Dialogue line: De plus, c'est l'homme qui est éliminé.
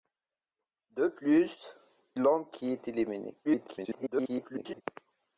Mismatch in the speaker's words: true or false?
true